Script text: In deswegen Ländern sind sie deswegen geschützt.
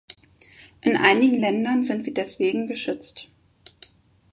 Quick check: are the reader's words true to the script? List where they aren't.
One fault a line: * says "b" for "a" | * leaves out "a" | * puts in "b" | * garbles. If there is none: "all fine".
* says "einigen" for "deswegen"